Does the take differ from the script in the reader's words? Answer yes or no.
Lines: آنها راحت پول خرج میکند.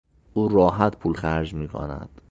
yes